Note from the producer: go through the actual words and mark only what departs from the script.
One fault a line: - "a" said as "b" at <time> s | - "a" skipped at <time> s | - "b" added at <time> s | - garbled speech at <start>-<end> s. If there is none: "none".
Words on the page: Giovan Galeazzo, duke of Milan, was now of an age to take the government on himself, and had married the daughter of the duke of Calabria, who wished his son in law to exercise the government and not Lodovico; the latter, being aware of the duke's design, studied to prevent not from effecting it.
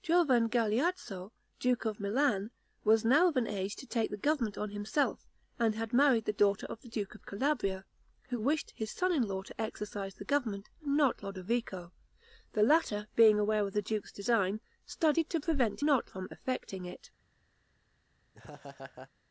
none